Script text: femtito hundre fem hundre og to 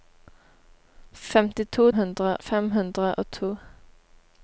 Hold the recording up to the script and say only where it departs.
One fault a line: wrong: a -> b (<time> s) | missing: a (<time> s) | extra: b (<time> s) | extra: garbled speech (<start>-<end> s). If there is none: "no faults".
no faults